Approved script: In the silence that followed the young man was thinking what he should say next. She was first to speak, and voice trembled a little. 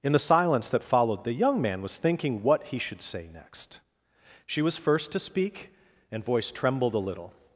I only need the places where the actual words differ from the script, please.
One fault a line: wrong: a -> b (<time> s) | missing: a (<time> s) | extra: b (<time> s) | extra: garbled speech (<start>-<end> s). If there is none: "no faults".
no faults